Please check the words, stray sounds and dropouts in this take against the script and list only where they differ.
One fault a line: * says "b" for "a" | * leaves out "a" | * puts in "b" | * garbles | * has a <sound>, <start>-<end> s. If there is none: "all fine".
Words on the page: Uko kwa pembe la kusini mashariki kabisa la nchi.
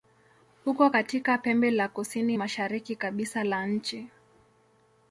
* says "katika" for "kwa"